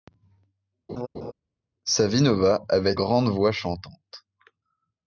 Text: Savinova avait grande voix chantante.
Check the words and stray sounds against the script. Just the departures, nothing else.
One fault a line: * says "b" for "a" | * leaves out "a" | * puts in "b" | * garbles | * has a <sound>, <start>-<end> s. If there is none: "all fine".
* has a laugh, 0.9-1.3 s